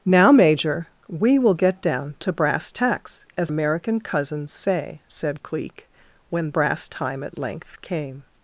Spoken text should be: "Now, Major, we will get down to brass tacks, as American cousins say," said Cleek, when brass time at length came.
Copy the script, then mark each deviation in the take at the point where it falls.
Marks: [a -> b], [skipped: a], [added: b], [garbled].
"Now, Major, we will get down to brass tacks, as American cousins say," said Cleek, when brass time at length came.